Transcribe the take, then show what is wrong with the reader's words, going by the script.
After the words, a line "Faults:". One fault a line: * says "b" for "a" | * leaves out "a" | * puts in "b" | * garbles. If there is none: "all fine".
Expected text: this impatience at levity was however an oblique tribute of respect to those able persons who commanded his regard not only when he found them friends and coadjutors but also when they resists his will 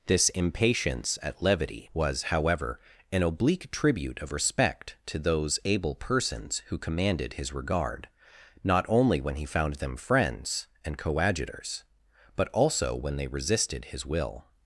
this impatience at levity was however an oblique tribute of respect to those able persons who commanded his regard not only when he found them friends and coadjutors but also when they resisted his will
Faults:
* says "resisted" for "resists"